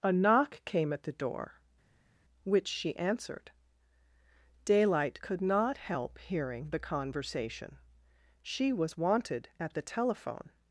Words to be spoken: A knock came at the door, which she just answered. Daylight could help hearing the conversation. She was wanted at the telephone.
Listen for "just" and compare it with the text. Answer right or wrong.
wrong